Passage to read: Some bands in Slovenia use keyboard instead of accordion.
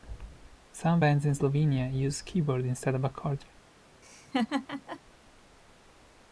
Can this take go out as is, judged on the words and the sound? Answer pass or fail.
fail